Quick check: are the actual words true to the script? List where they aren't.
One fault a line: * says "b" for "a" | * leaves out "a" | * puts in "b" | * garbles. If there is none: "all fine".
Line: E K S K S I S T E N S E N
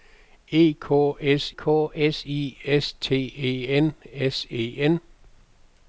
all fine